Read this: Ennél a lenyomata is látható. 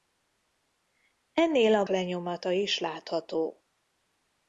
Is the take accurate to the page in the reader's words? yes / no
yes